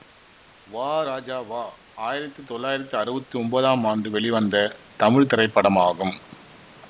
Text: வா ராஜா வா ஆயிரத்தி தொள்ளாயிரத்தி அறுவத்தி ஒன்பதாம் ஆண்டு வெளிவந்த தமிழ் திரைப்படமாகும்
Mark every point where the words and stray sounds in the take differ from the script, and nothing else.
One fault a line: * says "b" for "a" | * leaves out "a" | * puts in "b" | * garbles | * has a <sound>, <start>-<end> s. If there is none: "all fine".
all fine